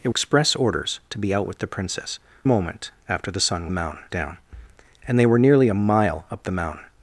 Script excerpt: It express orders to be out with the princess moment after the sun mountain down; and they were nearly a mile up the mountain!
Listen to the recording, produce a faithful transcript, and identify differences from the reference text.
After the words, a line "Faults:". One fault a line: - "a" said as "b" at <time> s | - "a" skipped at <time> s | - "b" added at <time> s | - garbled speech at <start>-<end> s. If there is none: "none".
It express orders to be out with the princess moment after the sun mountain down; and they were nearly a mile up the mountain!
Faults:
none